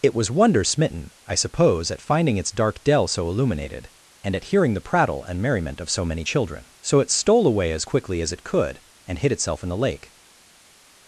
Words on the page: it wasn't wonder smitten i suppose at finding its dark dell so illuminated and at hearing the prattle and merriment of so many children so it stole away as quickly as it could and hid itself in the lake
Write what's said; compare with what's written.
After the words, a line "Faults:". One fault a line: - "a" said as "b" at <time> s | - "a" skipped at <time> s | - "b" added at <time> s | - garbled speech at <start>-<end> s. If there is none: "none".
it was wonder smitten i suppose at finding its dark dell so illuminated and at hearing the prattle and merriment of so many children so it stole away as quickly as it could and hid itself in the lake
Faults:
- "wasn't" said as "was" at 0.1 s